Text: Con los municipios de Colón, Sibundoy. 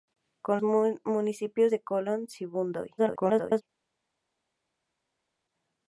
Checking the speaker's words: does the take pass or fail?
fail